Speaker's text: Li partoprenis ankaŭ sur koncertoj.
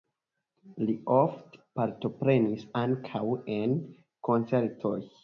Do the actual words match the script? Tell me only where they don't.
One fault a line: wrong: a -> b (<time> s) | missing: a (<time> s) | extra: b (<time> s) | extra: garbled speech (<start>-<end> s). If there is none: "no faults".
extra: ofte (1.1 s)
wrong: sur -> en (3.6 s)